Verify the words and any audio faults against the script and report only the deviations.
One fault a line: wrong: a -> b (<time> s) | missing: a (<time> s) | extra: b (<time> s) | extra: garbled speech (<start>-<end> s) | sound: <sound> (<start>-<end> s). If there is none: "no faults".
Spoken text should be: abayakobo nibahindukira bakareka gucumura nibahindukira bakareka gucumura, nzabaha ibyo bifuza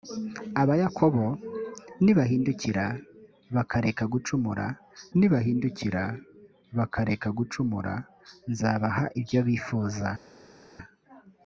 no faults